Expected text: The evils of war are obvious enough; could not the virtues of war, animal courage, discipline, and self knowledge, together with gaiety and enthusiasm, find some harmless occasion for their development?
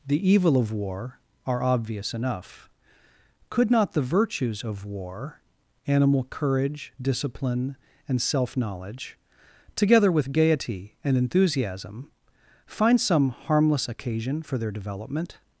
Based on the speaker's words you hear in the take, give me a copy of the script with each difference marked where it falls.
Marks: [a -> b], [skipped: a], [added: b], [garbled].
The [evils -> evil] of war are obvious enough; could not the virtues of war, animal courage, discipline, and self knowledge, together with gaiety and enthusiasm, find some harmless occasion for their development?